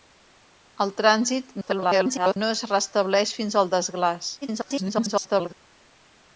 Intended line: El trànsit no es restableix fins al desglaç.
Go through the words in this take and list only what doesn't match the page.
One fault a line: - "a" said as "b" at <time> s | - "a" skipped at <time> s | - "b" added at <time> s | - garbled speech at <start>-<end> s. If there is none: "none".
- garbled speech at 1.6-2.4 s
- garbled speech at 4.4-5.5 s